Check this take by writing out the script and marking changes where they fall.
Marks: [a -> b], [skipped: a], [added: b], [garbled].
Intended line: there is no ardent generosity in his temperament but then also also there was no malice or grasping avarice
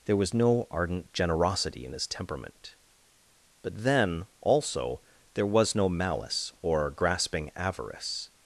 there [is -> was] no ardent generosity in his temperament but then also [skipped: also] there was no malice or grasping avarice